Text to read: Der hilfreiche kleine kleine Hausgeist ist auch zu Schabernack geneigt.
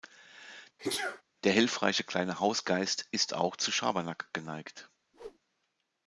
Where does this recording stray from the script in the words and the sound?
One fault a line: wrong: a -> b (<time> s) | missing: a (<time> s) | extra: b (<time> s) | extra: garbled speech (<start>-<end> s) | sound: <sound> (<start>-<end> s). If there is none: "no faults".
sound: sneeze (0.8-1.2 s)
missing: kleine (2.4 s)
sound: whoosh (5.1-5.4 s)